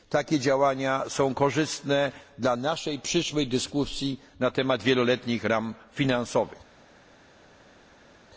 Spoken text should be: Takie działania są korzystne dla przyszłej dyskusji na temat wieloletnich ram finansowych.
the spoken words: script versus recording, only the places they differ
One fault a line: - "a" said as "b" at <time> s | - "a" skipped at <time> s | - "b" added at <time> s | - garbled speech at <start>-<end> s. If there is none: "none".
- "naszej" added at 2.5 s